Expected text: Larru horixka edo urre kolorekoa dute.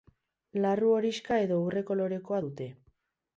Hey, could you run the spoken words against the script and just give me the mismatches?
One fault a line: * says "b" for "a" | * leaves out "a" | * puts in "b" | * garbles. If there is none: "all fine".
all fine